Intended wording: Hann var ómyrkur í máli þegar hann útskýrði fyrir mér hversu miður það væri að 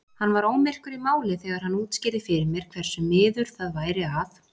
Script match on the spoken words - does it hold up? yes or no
yes